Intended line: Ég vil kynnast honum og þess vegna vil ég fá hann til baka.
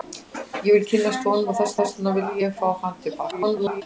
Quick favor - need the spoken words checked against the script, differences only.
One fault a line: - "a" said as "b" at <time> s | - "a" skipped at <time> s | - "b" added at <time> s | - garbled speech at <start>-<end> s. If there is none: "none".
- "þess" added at 1.8 s
- garbled speech at 3.3-3.8 s